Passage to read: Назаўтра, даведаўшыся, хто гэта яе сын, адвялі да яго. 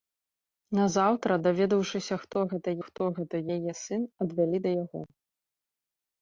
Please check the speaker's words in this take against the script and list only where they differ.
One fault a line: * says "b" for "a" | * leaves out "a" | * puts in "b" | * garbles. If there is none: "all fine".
* puts in "хто гэта"